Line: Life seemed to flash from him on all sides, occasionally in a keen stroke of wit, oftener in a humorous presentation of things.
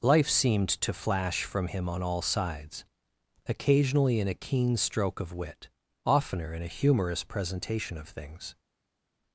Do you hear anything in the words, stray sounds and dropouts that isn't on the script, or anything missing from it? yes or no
no